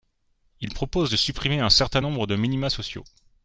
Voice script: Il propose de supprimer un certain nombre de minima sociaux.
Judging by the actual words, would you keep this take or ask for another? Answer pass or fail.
pass